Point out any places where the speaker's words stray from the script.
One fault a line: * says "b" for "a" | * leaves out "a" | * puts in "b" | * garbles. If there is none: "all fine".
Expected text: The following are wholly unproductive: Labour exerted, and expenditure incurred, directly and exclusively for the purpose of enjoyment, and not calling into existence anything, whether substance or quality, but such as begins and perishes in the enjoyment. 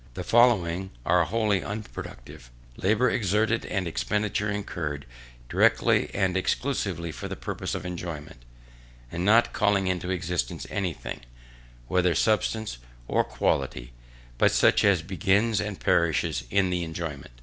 all fine